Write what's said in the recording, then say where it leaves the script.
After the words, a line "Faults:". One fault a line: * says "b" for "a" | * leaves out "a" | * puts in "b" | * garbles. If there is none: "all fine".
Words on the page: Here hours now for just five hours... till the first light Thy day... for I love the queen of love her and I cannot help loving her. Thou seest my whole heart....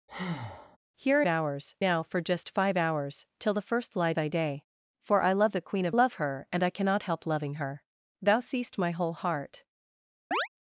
Here hours now for just five hours... till the first light Thy day... for I love the queen of love her and I cannot help loving her. Thou seest my whole heart....
Faults:
all fine